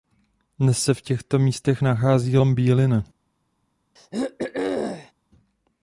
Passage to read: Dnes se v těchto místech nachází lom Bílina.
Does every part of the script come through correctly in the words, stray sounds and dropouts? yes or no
no